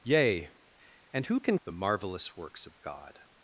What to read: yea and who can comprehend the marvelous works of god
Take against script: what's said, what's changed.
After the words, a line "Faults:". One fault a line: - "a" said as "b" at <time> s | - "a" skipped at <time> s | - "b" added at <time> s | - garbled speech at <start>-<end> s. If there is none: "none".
yea and who can the marvelous works of god
Faults:
- "comprehend" skipped at 1.6 s